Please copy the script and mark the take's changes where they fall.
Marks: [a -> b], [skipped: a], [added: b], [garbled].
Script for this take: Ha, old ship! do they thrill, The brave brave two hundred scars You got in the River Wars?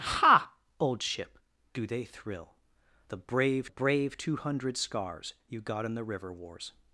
Ha, old ship! do they thrill, The brave brave two hundred scars You got in the River Wars?